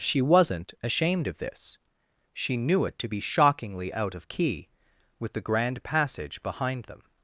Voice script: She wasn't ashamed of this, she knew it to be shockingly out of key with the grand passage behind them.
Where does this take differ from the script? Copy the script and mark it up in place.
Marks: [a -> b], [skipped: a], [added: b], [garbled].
She wasn't ashamed of this, she knew it to be shockingly out of key with the grand passage behind them.